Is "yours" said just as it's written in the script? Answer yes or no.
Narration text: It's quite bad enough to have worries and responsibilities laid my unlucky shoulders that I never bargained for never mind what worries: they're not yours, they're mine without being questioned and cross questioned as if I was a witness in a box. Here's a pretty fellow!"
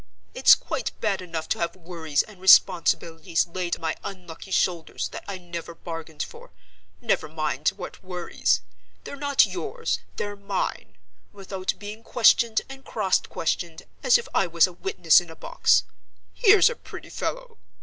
yes